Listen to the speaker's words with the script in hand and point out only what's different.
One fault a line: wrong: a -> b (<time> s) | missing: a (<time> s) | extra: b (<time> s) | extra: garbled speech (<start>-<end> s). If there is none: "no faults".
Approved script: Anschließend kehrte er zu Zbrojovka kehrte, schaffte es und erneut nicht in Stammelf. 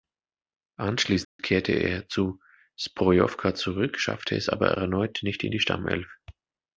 wrong: kehrte -> zurück (3.5 s)
wrong: und -> aber (4.5 s)
extra: die (5.5 s)